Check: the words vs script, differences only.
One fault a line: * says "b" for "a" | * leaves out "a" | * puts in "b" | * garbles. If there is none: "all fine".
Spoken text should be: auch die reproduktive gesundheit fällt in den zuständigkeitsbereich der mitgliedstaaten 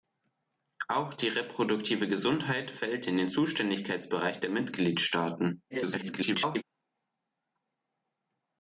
* garbles